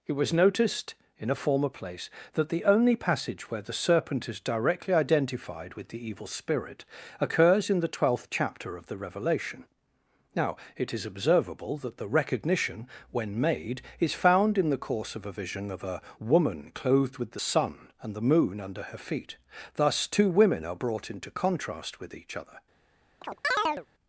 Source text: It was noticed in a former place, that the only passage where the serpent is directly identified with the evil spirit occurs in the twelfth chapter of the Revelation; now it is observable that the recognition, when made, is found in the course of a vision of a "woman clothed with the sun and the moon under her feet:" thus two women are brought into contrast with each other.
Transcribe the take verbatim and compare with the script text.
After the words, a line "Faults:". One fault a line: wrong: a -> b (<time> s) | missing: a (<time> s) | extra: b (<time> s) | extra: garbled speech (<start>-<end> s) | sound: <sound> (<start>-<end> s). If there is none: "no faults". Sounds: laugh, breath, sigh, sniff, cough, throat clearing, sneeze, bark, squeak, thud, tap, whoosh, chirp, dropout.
It was noticed in a former place, that the only passage where the serpent is directly identified with the evil spirit occurs in the twelfth chapter of the Revelation; now it is observable that the recognition, when made, is found in the course of a vision of a "woman clothed with the sun and the moon under her feet:" thus two women are brought into contrast with each other.
Faults:
sound: chirp (23.2-23.9 s)